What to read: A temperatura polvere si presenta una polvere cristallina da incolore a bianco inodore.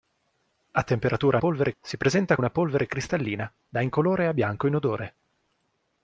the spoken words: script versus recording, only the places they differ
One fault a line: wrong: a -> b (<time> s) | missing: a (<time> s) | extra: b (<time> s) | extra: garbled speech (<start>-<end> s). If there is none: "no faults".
no faults